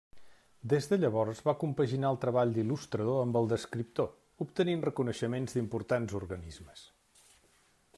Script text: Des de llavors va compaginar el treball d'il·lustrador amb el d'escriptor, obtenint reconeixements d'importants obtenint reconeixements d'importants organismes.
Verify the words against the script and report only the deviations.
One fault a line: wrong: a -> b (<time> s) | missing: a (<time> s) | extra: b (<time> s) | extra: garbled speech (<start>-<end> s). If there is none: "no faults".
missing: obtenint reconeixements d'importants (6.2 s)